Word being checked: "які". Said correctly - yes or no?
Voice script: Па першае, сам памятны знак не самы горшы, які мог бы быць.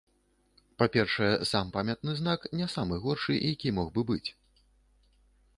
yes